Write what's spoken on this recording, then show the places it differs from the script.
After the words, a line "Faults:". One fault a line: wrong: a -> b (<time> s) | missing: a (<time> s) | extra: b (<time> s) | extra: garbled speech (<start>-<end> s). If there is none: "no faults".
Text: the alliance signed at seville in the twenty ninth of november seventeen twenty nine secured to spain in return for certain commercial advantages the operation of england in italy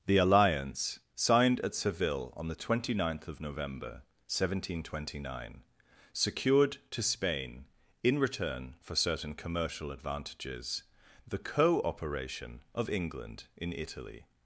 the alliance signed at seville on the twenty ninth of november seventeen twenty nine secured to spain in return for certain commercial advantages the co operation of england in italy
Faults:
wrong: in -> on (2.4 s)
extra: co (11.4 s)